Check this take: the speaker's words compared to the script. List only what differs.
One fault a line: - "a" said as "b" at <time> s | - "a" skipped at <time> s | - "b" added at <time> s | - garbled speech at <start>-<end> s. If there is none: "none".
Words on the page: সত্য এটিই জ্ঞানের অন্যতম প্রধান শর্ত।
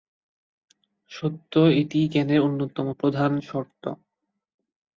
none